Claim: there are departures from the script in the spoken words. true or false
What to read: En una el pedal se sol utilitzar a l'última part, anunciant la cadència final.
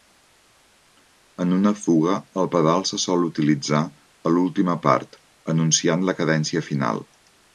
true